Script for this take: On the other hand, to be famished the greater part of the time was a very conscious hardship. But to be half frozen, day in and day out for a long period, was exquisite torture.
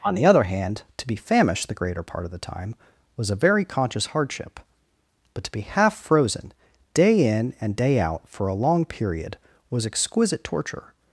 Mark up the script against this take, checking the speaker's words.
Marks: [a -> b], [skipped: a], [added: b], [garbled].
On the other hand, to be famished the greater part of the time was a very conscious hardship. But to be half frozen, day in and day out for a long period, was exquisite torture.